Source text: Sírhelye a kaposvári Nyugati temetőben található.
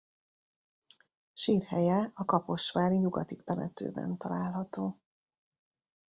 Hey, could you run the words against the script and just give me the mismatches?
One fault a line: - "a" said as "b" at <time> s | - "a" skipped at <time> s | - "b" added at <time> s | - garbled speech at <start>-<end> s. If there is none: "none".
none